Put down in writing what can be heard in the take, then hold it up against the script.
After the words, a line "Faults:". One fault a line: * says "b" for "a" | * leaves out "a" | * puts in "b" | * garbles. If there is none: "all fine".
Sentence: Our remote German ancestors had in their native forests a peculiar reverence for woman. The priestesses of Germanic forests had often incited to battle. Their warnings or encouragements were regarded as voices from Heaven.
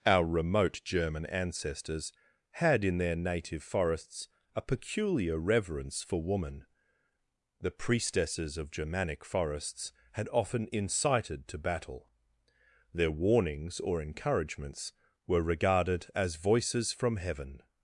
Our remote German ancestors had in their native forests a peculiar reverence for woman. The priestesses of Germanic forests had often incited to battle. Their warnings or encouragements were regarded as voices from Heaven.
Faults:
all fine